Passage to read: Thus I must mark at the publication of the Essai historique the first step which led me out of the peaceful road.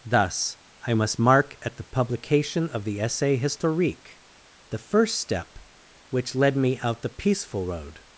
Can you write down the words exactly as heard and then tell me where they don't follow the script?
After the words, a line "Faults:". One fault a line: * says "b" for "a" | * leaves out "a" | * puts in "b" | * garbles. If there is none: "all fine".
Thus I must mark at the publication of the Essai historique the first step which led me out the peaceful road.
Faults:
* leaves out "of"